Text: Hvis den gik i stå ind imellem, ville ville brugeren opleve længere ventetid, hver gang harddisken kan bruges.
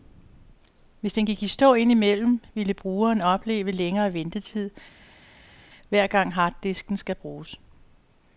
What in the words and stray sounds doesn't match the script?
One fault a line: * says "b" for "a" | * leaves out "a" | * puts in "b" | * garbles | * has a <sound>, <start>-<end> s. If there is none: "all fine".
* leaves out "ville"
* says "skal" for "kan"